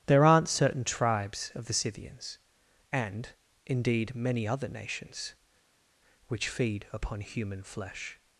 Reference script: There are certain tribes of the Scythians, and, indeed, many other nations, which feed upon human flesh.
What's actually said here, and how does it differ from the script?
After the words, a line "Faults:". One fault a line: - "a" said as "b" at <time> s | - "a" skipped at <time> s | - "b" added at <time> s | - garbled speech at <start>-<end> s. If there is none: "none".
There aren't certain tribes of the Scythians, and, indeed, many other nations, which feed upon human flesh.
Faults:
- "are" said as "aren't" at 0.2 s